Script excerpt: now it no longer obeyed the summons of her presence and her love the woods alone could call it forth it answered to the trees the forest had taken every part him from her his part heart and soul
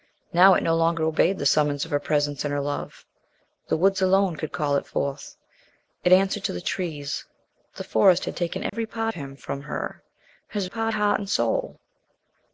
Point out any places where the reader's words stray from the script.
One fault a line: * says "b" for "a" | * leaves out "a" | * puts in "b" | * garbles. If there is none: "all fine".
all fine